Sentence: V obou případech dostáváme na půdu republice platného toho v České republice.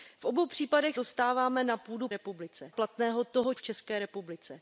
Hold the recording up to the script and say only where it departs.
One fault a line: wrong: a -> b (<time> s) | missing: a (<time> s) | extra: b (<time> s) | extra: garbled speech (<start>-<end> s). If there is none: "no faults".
no faults